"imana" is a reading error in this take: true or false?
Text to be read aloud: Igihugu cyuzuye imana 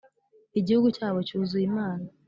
false